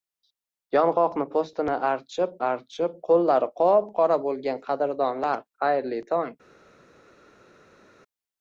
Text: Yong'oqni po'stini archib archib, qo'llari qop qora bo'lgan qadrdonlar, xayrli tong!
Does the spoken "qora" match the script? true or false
true